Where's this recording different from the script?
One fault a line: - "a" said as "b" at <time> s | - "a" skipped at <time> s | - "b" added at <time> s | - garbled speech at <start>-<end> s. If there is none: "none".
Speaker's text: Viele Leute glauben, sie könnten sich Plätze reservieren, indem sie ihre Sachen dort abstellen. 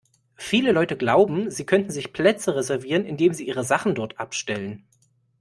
none